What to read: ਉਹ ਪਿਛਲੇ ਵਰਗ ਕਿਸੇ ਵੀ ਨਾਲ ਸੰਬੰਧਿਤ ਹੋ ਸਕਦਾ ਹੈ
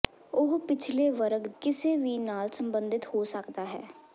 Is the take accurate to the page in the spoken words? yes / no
yes